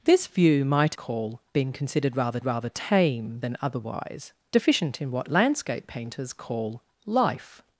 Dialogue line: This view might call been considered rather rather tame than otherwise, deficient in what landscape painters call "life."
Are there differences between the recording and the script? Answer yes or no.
no